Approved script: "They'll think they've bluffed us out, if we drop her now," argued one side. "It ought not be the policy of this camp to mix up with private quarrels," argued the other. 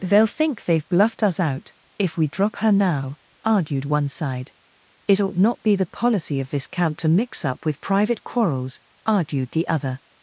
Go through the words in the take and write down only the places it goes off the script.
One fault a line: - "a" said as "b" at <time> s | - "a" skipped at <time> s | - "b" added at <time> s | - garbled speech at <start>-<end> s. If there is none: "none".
none